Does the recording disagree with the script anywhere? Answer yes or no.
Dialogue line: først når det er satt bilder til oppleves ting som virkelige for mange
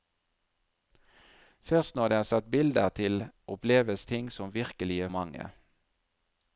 yes